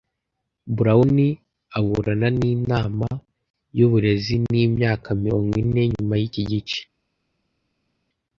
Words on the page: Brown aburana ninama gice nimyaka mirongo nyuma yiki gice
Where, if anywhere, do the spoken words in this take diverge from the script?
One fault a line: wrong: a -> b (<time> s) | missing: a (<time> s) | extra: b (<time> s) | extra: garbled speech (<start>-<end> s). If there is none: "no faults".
wrong: gice -> yuburezi (3.8 s)
extra: ine (5.6 s)